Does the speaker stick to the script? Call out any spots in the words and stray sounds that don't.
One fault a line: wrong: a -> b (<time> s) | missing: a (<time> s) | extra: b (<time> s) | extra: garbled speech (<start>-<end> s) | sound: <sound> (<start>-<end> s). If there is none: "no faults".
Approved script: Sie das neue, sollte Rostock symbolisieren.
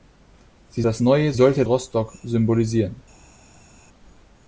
no faults